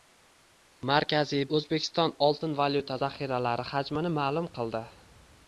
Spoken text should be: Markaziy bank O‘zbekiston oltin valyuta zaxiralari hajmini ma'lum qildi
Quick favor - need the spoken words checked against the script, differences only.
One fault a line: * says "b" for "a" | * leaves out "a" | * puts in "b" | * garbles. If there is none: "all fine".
* leaves out "bank"